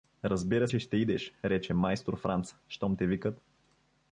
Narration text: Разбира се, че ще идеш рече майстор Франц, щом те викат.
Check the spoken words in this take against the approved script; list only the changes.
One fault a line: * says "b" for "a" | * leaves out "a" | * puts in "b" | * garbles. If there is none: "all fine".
* leaves out "се"